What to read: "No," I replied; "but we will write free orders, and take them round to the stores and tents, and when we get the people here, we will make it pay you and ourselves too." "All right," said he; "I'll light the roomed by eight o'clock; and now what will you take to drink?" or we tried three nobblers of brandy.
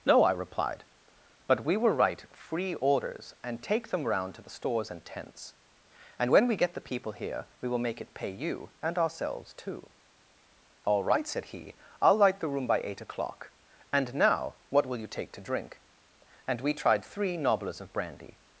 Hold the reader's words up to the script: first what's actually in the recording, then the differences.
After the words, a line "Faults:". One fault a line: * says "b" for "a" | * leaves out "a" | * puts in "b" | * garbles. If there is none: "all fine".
"No," I replied; "but we will write free orders, and take them round to the stores and tents, and when we get the people here, we will make it pay you and ourselves too." "All right," said he; "I'll light the room by eight o'clock; and now what will you take to drink?" and we tried three nobblers of brandy.
Faults:
* says "room" for "roomed"
* says "and" for "or"